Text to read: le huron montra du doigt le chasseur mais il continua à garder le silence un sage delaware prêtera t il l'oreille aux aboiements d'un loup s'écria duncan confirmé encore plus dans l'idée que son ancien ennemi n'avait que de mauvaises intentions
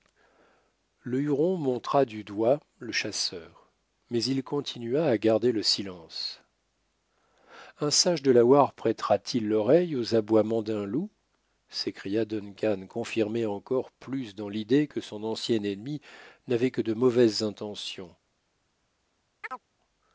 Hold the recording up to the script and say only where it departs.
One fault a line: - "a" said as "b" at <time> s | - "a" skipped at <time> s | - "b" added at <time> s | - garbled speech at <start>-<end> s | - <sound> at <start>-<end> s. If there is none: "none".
- chirp at 19.4-19.6 s